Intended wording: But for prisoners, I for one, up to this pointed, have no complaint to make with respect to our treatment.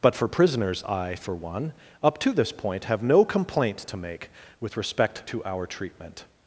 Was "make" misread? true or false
false